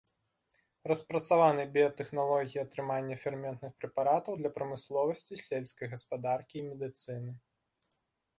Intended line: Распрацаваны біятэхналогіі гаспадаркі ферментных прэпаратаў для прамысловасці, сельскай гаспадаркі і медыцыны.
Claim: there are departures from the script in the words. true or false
true